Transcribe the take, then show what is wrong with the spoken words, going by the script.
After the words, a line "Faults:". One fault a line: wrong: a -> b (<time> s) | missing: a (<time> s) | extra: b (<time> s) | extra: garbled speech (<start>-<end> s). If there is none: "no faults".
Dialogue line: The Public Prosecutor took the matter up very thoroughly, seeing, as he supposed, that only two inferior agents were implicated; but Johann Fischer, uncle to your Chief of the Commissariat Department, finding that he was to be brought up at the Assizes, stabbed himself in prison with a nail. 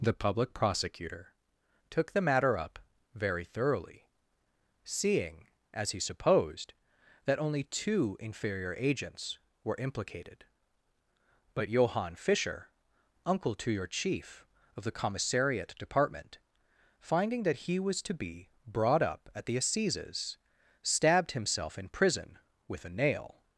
The Public Prosecutor took the matter up very thoroughly, seeing, as he supposed, that only two inferior agents were implicated; but Johann Fischer, uncle to your Chief of the Commissariat Department, finding that he was to be brought up at the Assizes, stabbed himself in prison with a nail.
Faults:
no faults